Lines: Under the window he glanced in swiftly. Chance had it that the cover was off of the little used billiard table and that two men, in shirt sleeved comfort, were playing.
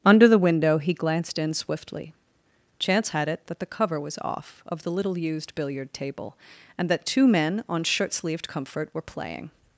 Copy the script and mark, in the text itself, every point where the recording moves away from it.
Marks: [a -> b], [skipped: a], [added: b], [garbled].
Under the window he glanced in swiftly. Chance had it that the cover was off of the little used billiard table and that two men, [in -> on] shirt sleeved comfort, were playing.